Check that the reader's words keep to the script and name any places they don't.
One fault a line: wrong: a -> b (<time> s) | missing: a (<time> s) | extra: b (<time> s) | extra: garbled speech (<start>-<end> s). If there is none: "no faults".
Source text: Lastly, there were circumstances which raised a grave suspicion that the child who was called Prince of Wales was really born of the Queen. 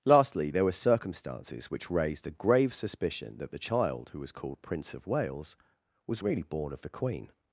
no faults